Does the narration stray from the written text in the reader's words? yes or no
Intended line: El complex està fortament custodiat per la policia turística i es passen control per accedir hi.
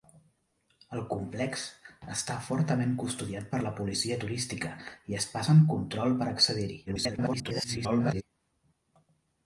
yes